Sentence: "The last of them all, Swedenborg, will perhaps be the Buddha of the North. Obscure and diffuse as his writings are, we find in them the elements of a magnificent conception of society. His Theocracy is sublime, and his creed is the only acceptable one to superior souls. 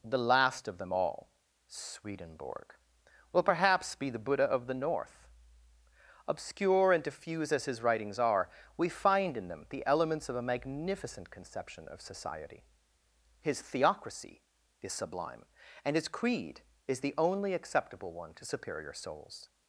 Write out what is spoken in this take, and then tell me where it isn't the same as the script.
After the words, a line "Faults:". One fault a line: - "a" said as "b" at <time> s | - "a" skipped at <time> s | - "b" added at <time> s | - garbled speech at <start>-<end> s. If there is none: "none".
"The last of them all, Swedenborg, will perhaps be the Buddha of the North. Obscure and diffuse as his writings are, we find in them the elements of a magnificent conception of society. His Theocracy is sublime, and his creed is the only acceptable one to superior souls.
Faults:
none